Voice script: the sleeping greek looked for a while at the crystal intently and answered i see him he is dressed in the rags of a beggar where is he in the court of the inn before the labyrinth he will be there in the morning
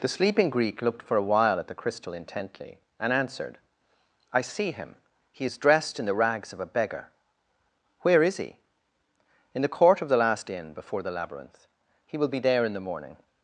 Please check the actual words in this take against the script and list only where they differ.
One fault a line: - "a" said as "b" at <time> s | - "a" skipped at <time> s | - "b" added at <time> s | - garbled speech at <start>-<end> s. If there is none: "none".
- "last" added at 10.2 s